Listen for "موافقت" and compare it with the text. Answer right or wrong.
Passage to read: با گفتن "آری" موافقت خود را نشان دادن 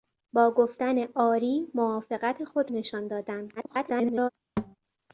right